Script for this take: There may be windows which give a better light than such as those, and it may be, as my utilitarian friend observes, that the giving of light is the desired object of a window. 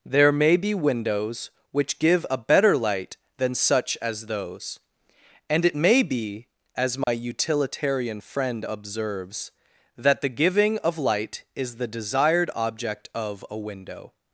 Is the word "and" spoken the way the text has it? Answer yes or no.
yes